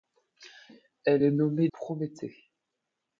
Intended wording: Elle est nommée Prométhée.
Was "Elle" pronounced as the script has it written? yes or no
yes